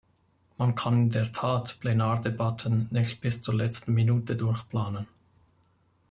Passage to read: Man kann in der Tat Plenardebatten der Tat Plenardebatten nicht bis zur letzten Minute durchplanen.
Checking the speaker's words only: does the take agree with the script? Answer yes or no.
no